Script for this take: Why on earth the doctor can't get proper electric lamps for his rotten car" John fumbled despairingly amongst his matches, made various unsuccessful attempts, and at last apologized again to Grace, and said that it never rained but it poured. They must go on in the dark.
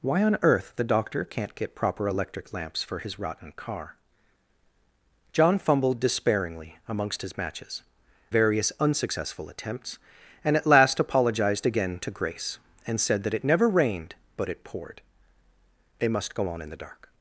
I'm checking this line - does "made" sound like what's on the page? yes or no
no